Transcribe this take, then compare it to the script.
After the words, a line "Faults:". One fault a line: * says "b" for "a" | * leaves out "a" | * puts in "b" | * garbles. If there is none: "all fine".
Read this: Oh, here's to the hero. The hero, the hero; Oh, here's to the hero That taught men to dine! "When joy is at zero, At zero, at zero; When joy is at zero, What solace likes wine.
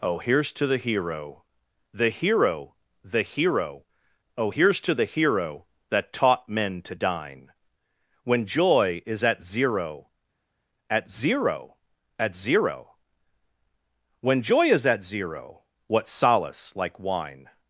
Oh, here's to the hero. The hero, the hero; Oh, here's to the hero That taught men to dine! "When joy is at zero, At zero, at zero; When joy is at zero, What solace like wine.
Faults:
* says "like" for "likes"